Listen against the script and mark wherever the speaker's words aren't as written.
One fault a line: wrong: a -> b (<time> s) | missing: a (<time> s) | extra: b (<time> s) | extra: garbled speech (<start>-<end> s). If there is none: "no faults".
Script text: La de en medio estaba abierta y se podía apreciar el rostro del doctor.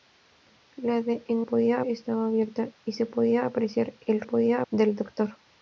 wrong: medio -> podía (1.4 s)
wrong: rostro -> podía (4.2 s)